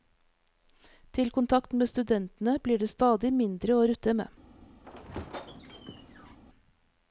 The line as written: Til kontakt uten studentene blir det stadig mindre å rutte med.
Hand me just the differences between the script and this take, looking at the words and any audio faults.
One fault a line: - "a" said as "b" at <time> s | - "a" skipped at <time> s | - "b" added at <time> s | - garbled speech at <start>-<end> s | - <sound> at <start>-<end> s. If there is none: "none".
- "uten" said as "med" at 1.7 s
- squeak at 4.8-6.4 s